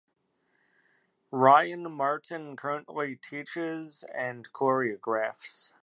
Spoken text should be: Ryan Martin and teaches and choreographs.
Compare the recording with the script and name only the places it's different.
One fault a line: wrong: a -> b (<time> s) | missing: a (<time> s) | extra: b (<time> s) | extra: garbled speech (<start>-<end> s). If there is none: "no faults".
wrong: and -> currently (2.5 s)